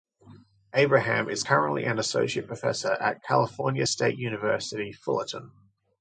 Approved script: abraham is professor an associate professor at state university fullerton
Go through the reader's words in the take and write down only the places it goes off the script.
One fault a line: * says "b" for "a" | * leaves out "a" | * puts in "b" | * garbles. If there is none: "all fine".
* says "currently" for "professor"
* puts in "california"